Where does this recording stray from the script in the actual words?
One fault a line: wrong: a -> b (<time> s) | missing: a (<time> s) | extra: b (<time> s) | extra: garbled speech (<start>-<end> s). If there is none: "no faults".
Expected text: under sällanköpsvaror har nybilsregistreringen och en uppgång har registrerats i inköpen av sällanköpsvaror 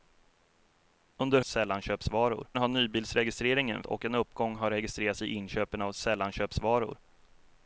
no faults